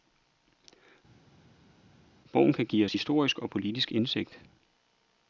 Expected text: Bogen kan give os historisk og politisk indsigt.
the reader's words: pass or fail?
pass